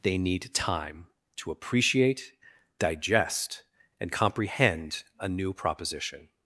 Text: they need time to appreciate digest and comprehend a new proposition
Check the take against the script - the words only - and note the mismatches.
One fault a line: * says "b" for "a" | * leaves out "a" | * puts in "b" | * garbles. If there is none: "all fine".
all fine